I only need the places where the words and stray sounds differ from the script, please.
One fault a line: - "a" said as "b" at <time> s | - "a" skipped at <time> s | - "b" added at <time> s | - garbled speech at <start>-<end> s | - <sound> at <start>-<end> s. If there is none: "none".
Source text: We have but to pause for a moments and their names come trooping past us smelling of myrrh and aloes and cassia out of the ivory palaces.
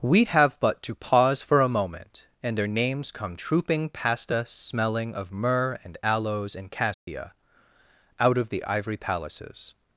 - "moments" said as "moment" at 1.7 s
- dropout at 6.9-7.1 s